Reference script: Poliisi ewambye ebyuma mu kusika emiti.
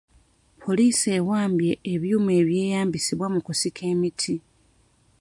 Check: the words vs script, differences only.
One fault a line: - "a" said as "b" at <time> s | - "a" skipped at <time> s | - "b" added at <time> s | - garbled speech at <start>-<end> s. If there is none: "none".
- "ebyeyambisibwa" added at 2.4 s